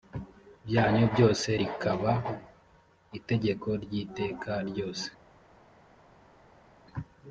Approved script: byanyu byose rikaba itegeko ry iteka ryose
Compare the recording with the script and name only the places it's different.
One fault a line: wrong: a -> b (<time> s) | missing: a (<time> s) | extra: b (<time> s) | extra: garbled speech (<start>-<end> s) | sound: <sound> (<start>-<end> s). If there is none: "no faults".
no faults